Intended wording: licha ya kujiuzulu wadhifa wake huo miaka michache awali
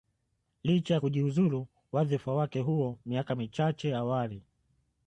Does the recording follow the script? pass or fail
pass